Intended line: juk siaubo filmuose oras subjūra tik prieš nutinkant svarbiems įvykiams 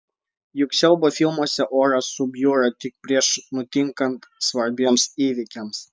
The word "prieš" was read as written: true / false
true